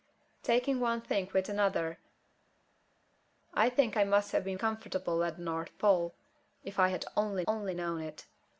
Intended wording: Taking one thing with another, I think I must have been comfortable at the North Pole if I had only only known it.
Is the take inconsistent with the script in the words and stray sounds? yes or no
no